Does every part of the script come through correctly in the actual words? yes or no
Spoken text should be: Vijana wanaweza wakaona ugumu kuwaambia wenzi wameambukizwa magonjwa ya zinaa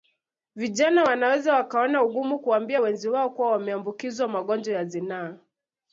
no